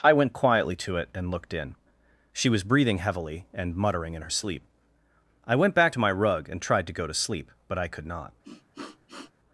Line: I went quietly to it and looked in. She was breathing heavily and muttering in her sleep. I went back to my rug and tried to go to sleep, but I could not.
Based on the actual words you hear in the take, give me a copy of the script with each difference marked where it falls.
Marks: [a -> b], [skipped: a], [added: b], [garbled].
I went quietly to it and looked in. She was breathing heavily and muttering in her sleep. I went back to my rug and tried to go to sleep, but I could not.